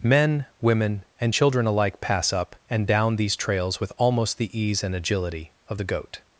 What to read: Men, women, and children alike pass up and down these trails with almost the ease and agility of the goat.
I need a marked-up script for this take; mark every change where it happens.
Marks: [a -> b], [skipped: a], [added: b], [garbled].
Men, women, and children alike pass up and down these trails with almost the ease and agility of the goat.